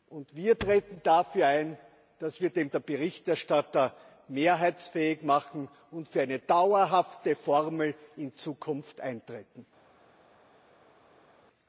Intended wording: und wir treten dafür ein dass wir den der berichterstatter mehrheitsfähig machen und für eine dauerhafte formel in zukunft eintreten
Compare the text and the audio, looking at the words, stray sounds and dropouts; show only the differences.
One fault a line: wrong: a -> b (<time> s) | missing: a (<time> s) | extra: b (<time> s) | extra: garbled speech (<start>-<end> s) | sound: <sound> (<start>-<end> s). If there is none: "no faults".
no faults